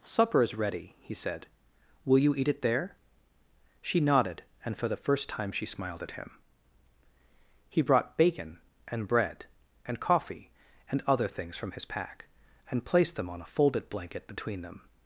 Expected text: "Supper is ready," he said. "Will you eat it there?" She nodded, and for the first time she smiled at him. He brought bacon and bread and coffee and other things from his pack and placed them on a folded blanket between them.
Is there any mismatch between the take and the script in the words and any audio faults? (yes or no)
no